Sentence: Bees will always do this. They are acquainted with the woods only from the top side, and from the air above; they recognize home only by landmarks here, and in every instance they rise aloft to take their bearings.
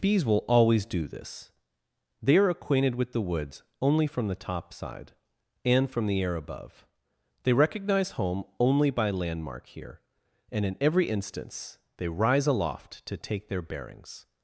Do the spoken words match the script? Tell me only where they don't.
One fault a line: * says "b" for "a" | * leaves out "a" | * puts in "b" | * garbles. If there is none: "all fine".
* says "landmark" for "landmarks"